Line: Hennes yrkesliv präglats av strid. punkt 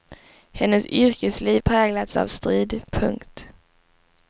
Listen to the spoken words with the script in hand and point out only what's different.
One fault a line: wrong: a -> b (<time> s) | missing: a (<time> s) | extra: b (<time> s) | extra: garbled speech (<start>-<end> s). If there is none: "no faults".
no faults